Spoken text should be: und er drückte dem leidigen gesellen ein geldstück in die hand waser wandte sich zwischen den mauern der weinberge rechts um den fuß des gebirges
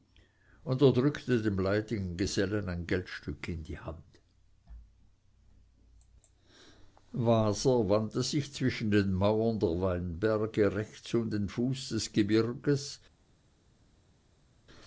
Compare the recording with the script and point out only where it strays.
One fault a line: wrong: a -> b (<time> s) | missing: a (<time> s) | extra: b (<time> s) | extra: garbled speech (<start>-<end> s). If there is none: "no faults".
no faults